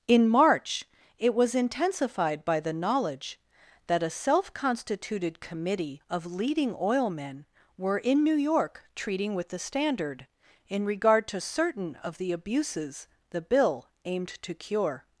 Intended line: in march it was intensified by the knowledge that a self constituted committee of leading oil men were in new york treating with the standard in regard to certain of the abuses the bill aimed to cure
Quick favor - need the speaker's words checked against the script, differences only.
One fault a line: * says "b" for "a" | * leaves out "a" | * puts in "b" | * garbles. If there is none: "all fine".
all fine